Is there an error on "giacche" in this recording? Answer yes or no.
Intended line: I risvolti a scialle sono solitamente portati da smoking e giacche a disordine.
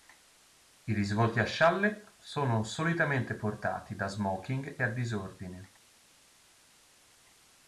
yes